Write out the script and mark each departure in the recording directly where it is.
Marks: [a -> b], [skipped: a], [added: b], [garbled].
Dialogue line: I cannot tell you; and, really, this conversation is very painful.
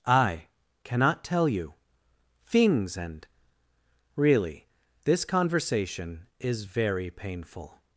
I cannot tell you; [added: things] and, really, this conversation is very painful.